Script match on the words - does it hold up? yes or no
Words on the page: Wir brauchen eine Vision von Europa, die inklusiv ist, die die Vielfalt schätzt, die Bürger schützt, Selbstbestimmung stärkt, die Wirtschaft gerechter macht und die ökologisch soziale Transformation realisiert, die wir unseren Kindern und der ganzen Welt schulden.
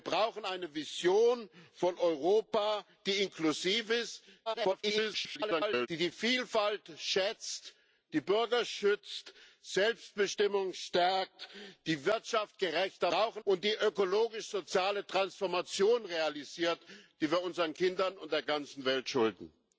no